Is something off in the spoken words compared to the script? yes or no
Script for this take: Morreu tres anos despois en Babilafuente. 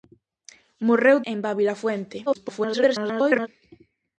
yes